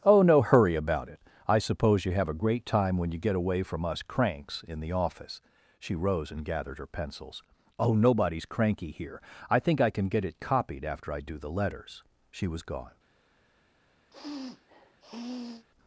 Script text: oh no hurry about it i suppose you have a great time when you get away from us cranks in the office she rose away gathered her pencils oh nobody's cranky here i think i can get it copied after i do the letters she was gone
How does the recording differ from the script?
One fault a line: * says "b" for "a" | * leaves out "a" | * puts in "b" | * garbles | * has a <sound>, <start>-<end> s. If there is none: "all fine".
* says "and" for "away"
* has a sniff, 14.1-15.7 s